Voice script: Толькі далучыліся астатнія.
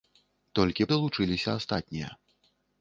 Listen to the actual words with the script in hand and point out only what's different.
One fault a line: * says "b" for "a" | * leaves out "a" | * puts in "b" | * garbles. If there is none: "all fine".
all fine